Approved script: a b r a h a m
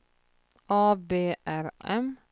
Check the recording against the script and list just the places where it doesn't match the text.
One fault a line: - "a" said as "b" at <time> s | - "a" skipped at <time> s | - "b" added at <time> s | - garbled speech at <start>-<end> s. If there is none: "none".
- "a h a" skipped at 1.7 s